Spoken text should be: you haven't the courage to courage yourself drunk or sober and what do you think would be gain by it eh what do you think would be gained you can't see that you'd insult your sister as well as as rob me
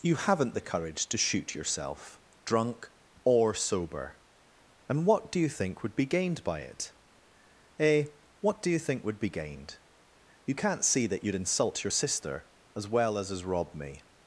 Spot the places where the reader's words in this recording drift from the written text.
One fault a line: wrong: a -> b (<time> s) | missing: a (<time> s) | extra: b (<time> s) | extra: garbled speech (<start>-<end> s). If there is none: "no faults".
wrong: courage -> shoot (1.2 s)
wrong: gain -> gained (6.1 s)